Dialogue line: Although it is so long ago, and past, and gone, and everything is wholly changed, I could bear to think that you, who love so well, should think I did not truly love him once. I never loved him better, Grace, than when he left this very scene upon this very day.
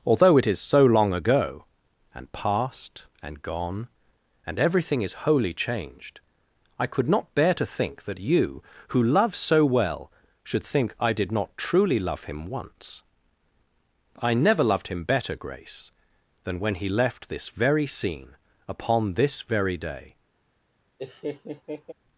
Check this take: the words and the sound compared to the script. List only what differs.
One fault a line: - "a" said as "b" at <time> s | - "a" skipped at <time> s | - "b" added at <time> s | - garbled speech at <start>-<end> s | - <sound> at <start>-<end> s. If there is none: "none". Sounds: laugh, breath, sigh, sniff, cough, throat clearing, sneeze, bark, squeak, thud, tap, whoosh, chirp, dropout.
- "not" added at 7.1 s
- laugh at 21.0-21.9 s